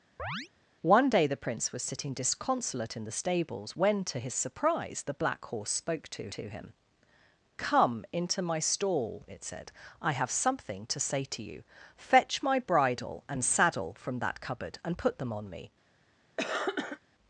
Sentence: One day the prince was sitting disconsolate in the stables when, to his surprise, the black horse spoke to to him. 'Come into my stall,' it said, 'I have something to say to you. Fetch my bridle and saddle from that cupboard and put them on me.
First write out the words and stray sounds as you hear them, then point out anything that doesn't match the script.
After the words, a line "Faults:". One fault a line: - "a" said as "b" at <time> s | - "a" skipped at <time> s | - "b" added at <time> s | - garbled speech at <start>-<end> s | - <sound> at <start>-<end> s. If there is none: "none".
One day the prince was sitting disconsolate in the stables when, to his surprise, the black horse spoke to to him. 'Come into my stall,' it said, 'I have something to say to you. Fetch my bridle and saddle from that cupboard and put them on me.
Faults:
- chirp at 0.2-0.5 s
- cough at 16.4-17.0 s